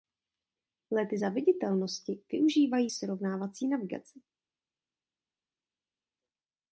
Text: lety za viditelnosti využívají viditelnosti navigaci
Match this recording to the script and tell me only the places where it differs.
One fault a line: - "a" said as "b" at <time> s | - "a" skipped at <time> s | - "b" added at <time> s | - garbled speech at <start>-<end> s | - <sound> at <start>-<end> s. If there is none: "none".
- "viditelnosti" said as "srovnávací" at 2.9 s